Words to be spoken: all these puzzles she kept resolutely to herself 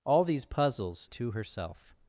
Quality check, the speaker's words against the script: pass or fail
fail